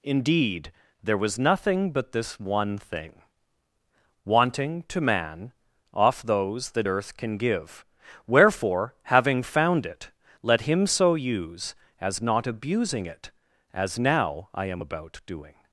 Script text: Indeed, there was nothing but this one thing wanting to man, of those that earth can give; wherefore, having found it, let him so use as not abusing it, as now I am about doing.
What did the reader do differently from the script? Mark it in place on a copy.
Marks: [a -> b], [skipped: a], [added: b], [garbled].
Indeed, there was nothing but this one thing wanting to man, [of -> off] those that earth can give; wherefore, having found it, let him so use as not abusing it, as now I am about doing.